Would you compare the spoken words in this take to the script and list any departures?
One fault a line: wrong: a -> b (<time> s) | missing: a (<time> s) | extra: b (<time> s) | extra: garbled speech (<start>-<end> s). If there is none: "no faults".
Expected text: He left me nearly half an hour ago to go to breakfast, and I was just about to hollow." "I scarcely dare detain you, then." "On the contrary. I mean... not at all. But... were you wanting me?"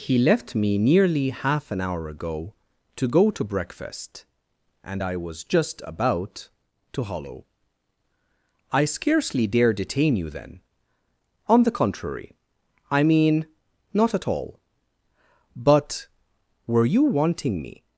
no faults